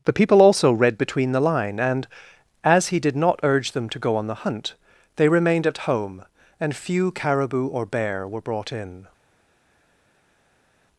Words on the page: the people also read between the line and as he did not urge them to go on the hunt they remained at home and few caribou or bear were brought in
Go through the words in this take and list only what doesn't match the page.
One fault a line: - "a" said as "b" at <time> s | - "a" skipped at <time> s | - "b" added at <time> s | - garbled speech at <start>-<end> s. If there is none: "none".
none